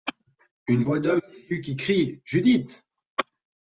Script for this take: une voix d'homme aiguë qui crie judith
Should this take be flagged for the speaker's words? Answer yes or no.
no